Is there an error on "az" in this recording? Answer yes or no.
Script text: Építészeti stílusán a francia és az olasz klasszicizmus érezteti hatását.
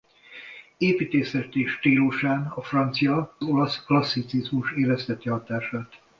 yes